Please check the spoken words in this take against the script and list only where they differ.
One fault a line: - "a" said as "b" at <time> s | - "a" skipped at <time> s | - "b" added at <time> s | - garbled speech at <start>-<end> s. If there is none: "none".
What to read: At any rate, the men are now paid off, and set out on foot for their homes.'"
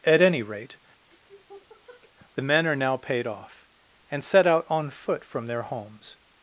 - "for" said as "from" at 5.2 s